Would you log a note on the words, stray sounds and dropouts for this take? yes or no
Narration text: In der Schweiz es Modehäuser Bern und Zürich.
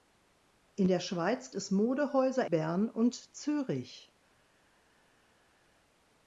no